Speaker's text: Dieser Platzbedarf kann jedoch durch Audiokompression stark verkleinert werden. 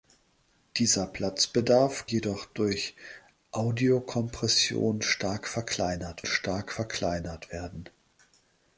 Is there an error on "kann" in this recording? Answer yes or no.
yes